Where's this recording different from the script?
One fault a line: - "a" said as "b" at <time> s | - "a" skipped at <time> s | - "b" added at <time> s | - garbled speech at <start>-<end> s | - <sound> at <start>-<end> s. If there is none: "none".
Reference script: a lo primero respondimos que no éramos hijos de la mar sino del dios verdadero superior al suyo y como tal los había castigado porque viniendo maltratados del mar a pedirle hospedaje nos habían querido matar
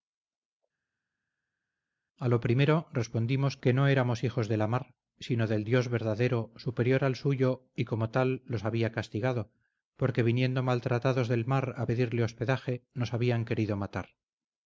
none